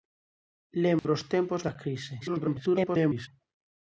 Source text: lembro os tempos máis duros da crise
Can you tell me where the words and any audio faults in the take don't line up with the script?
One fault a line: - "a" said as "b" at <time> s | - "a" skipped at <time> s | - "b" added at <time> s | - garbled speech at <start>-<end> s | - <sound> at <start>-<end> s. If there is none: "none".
- dropout at 1.0-1.0 s
- "máis duros" skipped at 1.6 s
- garbled speech at 2.2-3.3 s